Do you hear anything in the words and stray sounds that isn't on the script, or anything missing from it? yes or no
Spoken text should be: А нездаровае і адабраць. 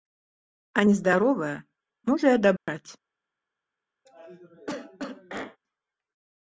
yes